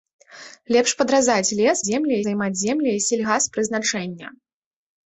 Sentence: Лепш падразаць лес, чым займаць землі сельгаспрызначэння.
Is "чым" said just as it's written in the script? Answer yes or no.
no